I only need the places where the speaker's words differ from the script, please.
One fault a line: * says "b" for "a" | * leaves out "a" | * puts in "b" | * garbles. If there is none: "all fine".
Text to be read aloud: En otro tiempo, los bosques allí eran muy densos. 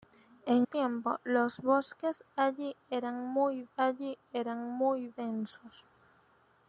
* leaves out "otro"
* puts in "allí eran muy"